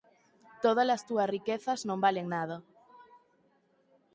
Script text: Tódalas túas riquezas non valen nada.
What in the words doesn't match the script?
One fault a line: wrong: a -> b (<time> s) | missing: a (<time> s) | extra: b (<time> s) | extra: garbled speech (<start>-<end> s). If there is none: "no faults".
no faults